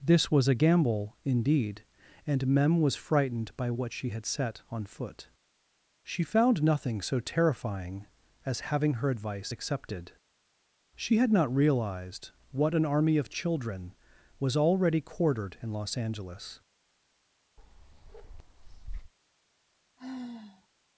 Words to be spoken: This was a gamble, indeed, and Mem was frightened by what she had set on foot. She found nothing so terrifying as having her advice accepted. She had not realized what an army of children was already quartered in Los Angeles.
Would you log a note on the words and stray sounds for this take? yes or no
yes